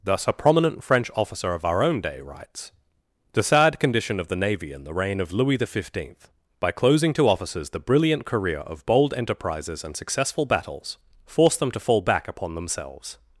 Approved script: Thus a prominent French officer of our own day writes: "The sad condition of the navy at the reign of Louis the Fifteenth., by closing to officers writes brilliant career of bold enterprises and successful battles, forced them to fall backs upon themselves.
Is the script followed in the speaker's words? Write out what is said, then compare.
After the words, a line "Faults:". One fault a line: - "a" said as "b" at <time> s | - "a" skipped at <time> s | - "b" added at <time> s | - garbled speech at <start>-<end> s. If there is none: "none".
Thus a prominent French officer of our own day writes: "The sad condition of the navy in the reign of Louis the Fifteenth., by closing to officers the brilliant career of bold enterprises and successful battles, forced them to fall back upon themselves.
Faults:
- "at" said as "in" at 4.7 s
- "writes" said as "the" at 7.7 s
- "backs" said as "back" at 12.0 s